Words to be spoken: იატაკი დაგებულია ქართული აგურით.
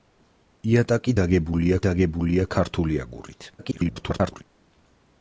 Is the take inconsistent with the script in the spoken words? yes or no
yes